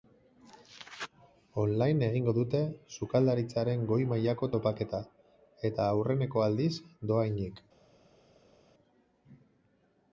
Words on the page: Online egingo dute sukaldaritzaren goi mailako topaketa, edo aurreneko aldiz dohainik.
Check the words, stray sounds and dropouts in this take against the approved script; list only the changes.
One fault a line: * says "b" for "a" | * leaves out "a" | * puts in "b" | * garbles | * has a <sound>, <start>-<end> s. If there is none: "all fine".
* says "eta" for "edo"